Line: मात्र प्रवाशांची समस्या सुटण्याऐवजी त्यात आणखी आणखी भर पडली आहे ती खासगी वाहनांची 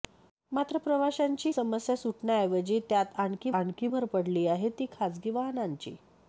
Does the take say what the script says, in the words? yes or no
yes